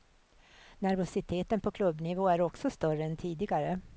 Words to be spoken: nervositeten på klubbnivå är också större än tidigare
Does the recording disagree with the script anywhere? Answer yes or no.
no